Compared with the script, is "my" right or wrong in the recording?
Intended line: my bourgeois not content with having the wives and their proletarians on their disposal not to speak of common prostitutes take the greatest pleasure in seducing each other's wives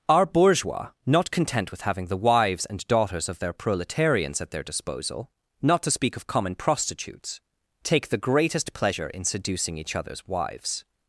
wrong